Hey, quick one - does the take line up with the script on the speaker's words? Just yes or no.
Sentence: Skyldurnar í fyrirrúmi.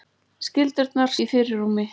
yes